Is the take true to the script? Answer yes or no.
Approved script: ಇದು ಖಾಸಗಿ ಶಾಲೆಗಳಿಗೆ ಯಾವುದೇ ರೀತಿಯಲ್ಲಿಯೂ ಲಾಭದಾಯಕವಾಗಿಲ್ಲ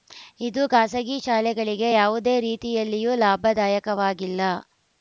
yes